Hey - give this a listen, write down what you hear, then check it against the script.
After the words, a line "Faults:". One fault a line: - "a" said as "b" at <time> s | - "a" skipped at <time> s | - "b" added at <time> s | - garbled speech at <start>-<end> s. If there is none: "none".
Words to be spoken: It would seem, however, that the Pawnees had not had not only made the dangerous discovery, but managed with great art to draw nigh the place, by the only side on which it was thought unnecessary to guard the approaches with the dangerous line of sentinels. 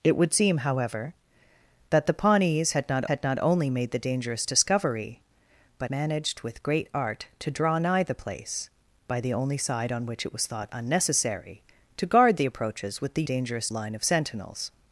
It would seem, however, that the Pawnees had not had not only made the dangerous discovery, but managed with great art to draw nigh the place, by the only side on which it was thought unnecessary to guard the approaches with the dangerous line of sentinels.
Faults:
none